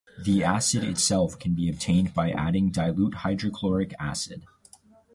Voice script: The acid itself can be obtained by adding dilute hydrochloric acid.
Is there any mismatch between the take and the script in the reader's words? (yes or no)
no